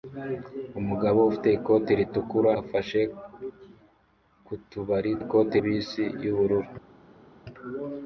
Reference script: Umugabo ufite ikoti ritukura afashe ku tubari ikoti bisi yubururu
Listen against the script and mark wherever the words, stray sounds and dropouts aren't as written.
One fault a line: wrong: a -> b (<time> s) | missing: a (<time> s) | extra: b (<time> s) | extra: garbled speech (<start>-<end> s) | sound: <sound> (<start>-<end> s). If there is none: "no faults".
no faults